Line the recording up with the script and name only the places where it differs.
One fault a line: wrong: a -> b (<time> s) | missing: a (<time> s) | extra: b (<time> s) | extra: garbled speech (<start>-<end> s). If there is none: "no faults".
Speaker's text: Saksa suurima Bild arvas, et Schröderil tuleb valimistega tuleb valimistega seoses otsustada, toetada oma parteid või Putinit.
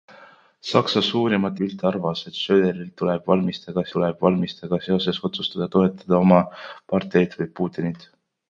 no faults